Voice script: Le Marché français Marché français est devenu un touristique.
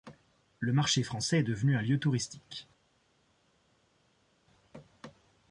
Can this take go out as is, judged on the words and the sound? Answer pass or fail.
fail